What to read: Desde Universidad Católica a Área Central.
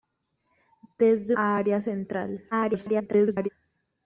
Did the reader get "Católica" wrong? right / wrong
wrong